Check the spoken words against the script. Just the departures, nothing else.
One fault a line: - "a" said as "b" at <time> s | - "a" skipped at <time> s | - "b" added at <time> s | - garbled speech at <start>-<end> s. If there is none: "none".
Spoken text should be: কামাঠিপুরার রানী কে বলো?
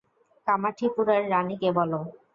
none